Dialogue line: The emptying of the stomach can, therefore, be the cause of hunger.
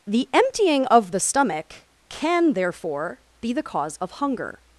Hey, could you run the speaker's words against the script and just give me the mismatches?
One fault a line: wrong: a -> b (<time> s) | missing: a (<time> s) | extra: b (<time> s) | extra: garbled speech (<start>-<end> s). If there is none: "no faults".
no faults